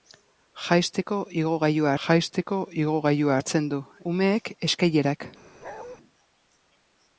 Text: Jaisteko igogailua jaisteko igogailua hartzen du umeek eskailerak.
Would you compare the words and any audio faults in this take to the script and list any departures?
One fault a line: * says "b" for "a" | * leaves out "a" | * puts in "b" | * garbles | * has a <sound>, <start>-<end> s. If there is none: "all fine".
* has a bark, 5.6-6.0 s